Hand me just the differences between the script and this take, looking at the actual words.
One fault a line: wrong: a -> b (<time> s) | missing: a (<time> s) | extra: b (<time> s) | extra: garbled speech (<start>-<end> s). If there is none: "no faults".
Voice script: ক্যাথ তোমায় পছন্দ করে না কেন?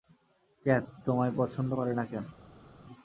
no faults